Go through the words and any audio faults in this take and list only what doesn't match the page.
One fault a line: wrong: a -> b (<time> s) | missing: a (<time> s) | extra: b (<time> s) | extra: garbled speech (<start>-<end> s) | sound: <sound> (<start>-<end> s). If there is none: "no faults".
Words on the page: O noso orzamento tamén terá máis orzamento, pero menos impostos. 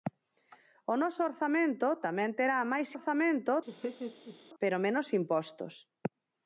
sound: laugh (3.7-4.4 s)